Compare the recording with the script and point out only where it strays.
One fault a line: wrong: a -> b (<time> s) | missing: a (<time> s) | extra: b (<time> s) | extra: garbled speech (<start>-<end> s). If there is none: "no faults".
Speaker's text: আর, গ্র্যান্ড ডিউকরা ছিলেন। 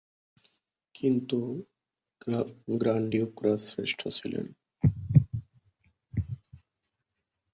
wrong: আর -> কিন্তু (0.9 s)
extra: শ্রেষ্ঠ (3.6 s)